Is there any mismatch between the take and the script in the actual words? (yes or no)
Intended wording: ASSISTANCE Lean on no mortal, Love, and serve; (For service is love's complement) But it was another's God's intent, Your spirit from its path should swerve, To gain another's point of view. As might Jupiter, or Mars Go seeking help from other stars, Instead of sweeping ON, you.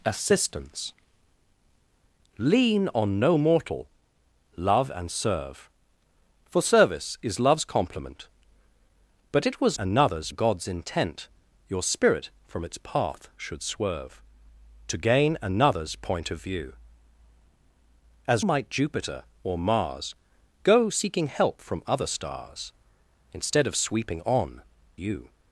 no